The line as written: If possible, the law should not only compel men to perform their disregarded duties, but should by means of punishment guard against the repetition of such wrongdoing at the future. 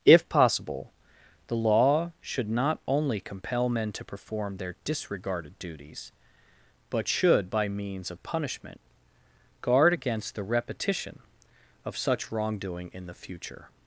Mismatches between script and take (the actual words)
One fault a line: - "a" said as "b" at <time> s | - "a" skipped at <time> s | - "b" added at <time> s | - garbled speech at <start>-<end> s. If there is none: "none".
- "at" said as "in" at 12.9 s